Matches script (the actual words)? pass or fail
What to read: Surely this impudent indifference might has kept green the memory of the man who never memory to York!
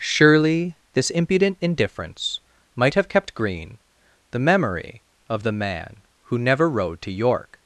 fail